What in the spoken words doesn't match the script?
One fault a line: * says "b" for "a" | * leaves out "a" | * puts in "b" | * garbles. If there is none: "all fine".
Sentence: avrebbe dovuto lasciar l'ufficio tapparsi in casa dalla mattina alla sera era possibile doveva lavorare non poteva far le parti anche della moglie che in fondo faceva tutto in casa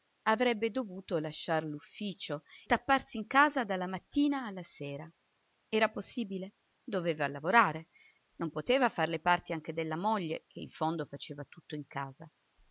all fine